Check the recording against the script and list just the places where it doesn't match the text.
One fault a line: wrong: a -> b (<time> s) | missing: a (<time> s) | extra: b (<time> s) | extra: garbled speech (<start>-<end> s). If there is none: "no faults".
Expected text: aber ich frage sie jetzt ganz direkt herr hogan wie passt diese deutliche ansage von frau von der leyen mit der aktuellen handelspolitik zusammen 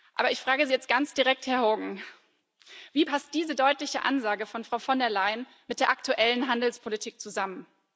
no faults